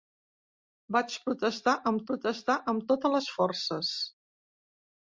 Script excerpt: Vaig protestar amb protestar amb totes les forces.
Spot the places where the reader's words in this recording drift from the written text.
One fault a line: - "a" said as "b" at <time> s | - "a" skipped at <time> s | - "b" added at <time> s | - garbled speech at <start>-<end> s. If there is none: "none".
none